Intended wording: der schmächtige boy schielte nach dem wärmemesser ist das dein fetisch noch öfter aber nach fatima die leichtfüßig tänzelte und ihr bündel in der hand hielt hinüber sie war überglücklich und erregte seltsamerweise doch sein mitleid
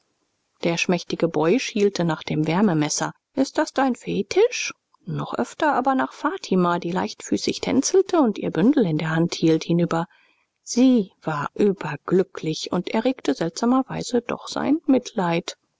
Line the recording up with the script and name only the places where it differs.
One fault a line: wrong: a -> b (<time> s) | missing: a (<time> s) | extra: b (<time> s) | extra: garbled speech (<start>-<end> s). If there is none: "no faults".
no faults